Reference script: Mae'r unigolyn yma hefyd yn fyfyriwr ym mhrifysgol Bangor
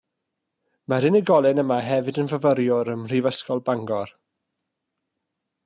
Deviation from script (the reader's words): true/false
false